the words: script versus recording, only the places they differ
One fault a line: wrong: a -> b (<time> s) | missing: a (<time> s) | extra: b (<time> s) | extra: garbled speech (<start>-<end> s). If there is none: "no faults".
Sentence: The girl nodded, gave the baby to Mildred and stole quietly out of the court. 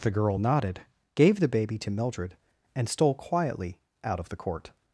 no faults